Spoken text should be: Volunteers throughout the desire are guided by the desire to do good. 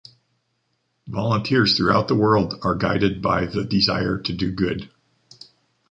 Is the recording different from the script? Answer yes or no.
yes